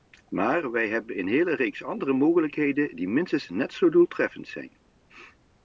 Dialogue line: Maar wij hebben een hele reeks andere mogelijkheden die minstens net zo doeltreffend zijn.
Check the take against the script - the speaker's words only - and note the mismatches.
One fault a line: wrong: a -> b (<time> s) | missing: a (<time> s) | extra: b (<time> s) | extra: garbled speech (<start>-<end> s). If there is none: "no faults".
no faults